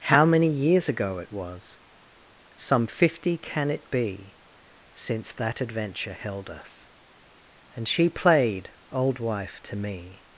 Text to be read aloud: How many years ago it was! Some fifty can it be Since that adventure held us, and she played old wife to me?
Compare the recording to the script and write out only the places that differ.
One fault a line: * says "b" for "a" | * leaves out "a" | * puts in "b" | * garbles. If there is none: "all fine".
all fine